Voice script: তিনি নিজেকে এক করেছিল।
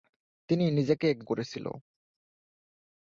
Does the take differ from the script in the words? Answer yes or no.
no